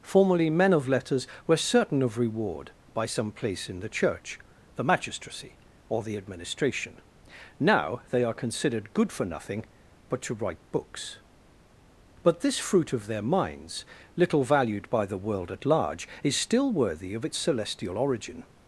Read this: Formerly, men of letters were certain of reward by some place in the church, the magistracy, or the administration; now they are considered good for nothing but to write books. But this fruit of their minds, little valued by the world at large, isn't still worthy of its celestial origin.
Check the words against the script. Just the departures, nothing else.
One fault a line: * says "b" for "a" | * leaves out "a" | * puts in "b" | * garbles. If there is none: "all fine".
* says "is" for "isn't"